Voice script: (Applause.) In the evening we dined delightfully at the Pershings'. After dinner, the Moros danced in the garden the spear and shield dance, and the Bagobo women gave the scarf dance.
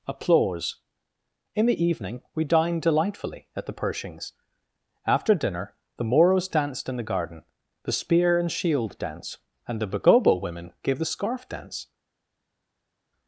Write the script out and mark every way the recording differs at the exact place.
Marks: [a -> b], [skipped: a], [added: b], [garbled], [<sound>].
(Applause.) In the evening we dined delightfully at the Pershings'. After dinner, the Moros danced in the garden the spear and shield dance, and the Bagobo women gave the scarf dance.